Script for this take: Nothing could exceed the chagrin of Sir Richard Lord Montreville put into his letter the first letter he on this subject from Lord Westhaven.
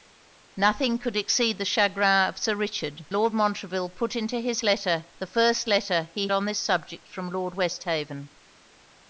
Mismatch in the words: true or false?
false